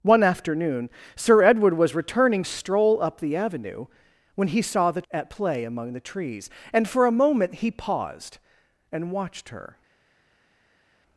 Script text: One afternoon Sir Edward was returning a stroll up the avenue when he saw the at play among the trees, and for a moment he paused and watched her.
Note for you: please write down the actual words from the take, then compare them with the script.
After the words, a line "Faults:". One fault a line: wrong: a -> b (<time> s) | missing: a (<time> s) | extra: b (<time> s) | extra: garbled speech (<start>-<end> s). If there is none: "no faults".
One afternoon Sir Edward was returning a stroll up the avenue when he saw the at play among the trees, and for a moment he paused and watched her.
Faults:
no faults